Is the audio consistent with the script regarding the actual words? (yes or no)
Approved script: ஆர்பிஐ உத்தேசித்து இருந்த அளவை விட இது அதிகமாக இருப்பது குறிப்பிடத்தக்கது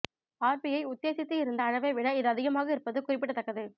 yes